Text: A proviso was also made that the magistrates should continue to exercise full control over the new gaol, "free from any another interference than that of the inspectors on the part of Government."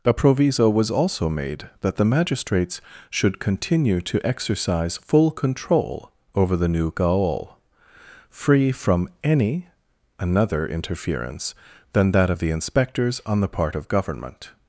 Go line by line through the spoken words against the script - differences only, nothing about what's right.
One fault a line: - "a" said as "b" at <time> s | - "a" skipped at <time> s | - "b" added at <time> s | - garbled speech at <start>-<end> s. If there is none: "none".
none